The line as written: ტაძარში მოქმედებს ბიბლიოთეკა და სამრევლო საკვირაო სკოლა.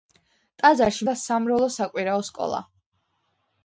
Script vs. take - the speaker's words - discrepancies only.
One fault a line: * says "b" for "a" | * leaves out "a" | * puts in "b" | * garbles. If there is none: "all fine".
* leaves out "მოქმედებს ბიბლიოთეკა"